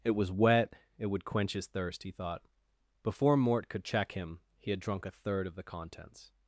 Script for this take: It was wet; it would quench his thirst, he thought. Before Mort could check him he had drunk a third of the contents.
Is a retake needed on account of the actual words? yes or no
no